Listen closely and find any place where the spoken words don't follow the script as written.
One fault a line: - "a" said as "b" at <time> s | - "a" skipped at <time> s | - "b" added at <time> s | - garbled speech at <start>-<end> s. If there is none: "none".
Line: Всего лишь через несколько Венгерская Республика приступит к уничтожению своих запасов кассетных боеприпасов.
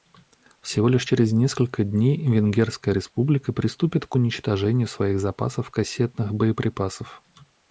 - "дней" added at 1.8 s